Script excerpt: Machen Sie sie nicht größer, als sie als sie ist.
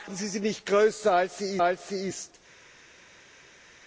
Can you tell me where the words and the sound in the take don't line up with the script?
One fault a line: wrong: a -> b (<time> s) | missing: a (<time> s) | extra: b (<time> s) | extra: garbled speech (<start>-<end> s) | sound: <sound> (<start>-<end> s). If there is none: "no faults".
no faults